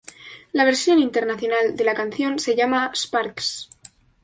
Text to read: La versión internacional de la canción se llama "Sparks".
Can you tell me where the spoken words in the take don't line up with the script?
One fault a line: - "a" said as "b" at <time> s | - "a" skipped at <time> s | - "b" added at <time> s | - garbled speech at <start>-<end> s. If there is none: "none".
none